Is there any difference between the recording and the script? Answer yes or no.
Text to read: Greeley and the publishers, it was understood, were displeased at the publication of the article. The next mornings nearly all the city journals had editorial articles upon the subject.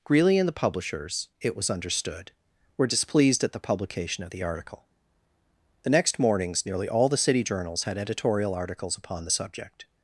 no